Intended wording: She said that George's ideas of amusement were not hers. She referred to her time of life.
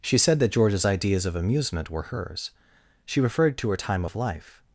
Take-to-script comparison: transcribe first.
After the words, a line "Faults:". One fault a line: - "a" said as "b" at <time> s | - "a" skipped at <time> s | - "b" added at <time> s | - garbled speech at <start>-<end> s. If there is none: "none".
She said that George's ideas of amusement were hers. She referred to her time of life.
Faults:
- "not" skipped at 2.0 s